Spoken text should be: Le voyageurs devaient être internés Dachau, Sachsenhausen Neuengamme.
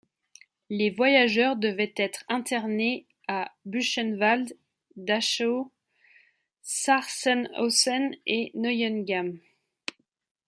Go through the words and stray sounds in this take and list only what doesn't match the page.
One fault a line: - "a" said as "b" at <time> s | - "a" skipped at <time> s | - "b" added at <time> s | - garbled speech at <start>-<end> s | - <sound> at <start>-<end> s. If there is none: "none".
- "Le" said as "Les" at 0.7 s
- "à Buchenwald" added at 3.3 s
- "et" added at 8.3 s